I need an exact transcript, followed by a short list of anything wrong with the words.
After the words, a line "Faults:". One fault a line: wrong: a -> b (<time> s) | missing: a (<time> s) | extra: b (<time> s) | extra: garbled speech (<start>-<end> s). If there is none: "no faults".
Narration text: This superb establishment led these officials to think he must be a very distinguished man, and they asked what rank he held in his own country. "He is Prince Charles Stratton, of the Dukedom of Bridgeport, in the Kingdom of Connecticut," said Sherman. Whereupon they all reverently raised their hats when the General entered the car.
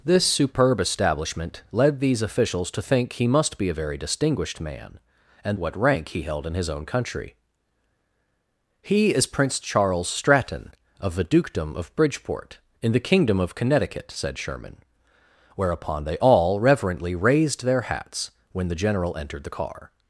This superb establishment led these officials to think he must be a very distinguished man, and what rank he held in his own country. "He is Prince Charles Stratton, of the Dukedom of Bridgeport, in the Kingdom of Connecticut," said Sherman. Whereupon they all reverently raised their hats when the General entered the car.
Faults:
missing: they asked (5.6 s)